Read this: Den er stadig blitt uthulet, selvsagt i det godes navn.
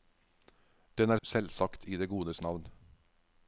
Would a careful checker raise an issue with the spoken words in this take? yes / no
yes